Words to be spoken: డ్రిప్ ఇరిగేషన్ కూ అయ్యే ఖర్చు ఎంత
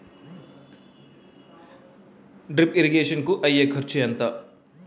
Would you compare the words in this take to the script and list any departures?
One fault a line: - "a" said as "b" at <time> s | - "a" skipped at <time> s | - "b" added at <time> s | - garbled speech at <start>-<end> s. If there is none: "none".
none